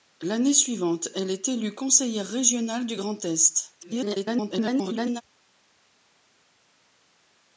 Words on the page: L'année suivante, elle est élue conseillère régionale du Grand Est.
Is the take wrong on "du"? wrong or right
right